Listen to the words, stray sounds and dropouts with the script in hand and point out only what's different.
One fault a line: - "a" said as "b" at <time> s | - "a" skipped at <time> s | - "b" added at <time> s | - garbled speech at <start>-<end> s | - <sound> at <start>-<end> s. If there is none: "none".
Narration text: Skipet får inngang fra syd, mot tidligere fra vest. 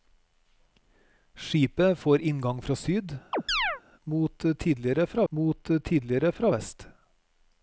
- chirp at 3.3-3.8 s
- "mot tidligere fra" added at 5.3 s